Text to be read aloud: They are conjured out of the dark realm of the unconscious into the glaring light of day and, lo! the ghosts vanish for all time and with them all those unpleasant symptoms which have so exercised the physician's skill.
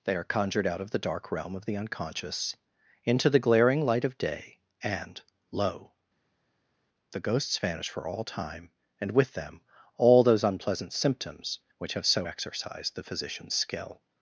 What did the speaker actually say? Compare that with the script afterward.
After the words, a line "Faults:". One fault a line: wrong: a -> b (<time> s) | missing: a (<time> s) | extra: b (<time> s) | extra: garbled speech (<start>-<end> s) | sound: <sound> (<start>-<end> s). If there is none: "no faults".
They are conjured out of the dark realm of the unconscious into the glaring light of day and, lo! the ghosts vanish for all time and with them all those unpleasant symptoms which have so exercised the physician's skill.
Faults:
no faults